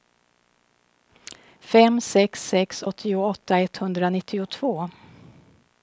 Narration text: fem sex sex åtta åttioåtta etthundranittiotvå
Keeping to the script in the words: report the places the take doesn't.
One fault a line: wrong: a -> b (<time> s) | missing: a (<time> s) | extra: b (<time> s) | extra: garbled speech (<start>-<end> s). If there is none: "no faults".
missing: åtta (2.8 s)